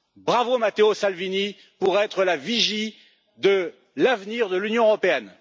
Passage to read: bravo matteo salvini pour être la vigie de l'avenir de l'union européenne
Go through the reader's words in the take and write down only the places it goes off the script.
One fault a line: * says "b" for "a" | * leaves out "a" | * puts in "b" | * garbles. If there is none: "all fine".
all fine